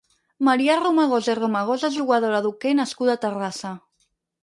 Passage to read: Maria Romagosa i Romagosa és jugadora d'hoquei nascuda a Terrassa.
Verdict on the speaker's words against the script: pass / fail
pass